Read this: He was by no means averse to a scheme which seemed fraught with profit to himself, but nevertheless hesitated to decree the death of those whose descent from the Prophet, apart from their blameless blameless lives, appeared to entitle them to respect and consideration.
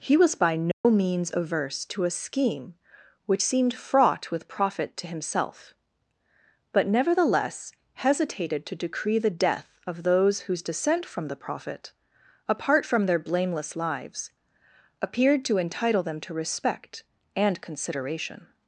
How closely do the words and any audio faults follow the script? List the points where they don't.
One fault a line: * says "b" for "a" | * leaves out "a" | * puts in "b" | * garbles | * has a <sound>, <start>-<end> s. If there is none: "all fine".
* has a dropout, 0.7-0.8 s
* leaves out "blameless"